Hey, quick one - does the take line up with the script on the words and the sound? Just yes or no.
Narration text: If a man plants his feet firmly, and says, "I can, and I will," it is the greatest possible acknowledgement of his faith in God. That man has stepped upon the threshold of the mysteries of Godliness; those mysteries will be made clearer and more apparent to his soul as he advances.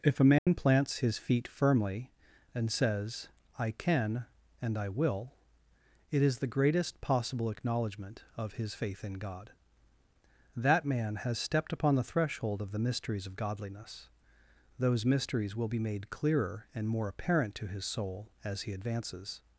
no